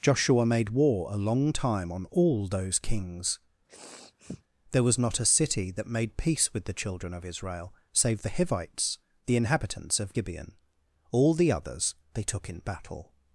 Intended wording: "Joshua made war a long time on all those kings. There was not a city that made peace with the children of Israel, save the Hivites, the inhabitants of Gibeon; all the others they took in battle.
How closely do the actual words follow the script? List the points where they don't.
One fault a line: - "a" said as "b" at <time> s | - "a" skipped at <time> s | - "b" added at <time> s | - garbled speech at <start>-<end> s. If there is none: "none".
none